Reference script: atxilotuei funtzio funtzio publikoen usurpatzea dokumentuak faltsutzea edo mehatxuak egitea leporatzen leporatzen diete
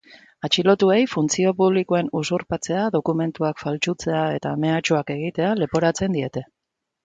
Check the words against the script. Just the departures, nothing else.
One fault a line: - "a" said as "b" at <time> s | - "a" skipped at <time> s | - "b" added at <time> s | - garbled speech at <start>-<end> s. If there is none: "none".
- "funtzio" skipped at 1.5 s
- "edo" said as "eta" at 4.4 s
- "leporatzen" skipped at 6.2 s